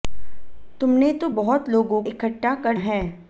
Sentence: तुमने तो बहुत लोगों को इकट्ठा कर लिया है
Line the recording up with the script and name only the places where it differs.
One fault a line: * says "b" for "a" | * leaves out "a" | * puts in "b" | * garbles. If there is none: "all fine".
* leaves out "को"
* leaves out "लिया"